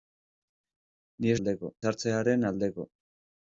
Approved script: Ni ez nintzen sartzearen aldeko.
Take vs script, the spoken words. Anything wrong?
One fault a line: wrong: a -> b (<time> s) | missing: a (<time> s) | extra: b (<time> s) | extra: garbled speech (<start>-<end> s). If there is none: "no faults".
wrong: nintzen -> aldeko (1.4 s)